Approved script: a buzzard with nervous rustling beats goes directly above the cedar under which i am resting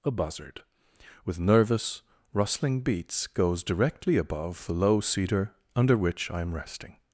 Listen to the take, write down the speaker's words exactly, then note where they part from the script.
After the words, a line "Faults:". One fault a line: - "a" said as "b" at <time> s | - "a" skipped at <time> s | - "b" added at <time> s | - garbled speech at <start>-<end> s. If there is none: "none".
a buzzard with nervous rustling beats goes directly above the low cedar under which i am resting
Faults:
- "low" added at 4.7 s